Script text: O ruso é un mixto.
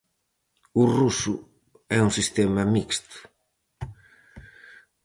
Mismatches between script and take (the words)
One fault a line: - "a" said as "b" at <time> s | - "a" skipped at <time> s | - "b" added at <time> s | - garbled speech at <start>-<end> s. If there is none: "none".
- "sistema" added at 2.2 s